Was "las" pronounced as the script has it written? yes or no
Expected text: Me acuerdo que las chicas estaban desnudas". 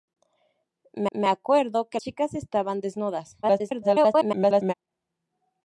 no